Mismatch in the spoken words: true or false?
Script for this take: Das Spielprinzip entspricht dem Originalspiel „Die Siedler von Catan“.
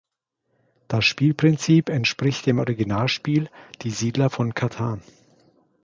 false